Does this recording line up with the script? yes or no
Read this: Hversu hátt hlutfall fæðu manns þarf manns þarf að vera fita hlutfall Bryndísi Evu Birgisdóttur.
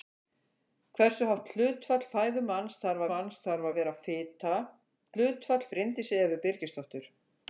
yes